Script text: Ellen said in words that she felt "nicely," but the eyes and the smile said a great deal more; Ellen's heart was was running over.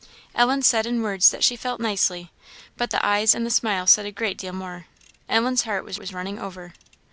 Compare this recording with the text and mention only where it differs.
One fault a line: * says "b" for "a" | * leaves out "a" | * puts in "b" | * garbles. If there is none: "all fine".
all fine